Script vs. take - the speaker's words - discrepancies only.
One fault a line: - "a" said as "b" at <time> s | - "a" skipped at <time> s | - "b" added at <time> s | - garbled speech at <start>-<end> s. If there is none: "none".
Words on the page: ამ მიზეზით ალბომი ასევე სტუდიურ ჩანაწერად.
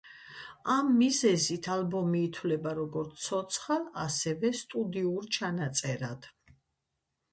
- "ითვლება როგორც ცოცხალ" added at 2.3 s